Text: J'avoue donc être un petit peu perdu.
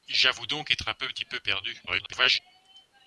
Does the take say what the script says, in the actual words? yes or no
no